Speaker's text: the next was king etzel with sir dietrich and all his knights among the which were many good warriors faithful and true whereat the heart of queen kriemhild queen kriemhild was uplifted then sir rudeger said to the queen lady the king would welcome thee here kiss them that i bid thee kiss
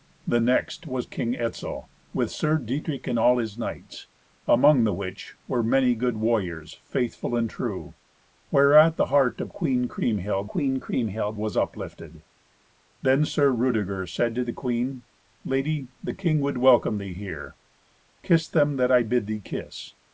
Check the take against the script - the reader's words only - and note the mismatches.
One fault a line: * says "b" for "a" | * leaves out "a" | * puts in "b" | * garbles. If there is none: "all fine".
all fine